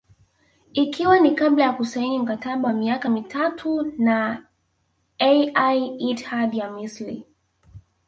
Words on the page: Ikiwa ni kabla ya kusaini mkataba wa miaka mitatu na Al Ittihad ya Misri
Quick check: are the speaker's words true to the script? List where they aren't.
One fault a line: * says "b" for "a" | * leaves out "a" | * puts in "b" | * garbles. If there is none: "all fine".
all fine